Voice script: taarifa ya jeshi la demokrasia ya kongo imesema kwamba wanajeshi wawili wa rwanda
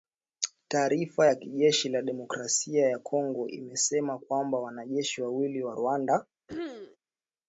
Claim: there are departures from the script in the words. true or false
false